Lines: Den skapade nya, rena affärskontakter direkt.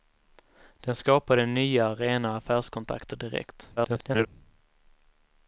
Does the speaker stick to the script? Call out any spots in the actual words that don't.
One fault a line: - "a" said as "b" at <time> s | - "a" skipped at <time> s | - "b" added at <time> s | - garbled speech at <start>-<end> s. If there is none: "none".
- garbled speech at 3.8-4.3 s